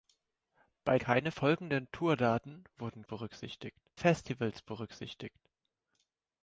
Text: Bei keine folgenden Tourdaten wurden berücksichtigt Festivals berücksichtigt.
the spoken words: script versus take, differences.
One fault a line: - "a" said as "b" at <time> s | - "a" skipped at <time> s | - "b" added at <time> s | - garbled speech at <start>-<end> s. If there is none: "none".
none